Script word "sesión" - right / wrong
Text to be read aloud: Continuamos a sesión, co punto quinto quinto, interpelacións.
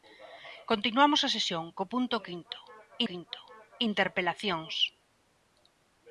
right